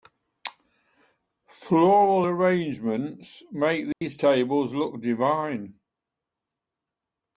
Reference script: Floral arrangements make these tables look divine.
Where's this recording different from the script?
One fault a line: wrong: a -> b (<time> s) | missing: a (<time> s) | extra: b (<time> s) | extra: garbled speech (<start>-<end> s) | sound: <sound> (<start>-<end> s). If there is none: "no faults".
sound: dropout (3.9-4.0 s)